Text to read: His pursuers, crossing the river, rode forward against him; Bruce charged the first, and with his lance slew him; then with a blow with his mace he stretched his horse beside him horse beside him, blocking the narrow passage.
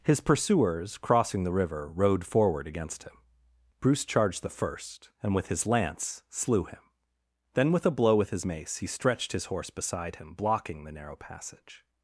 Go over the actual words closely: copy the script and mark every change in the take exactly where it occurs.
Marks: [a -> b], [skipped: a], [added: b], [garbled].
His pursuers, crossing the river, rode forward against him; Bruce charged the first, and with his lance slew him; then with a blow with his mace he stretched his horse beside him [skipped: horse beside him,] blocking the narrow passage.